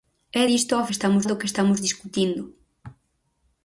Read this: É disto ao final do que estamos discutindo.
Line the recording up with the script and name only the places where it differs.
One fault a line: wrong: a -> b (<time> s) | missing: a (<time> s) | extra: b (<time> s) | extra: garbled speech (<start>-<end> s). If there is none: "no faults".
wrong: final -> estamos (0.9 s)